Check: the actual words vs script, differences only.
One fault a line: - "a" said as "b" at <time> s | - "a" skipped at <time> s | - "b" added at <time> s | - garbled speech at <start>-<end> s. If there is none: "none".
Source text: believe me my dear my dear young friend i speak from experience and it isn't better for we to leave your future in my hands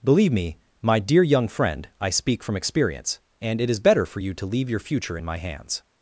- "my dear" skipped at 1.2 s
- "isn't" said as "is" at 3.7 s
- "we" said as "you" at 4.2 s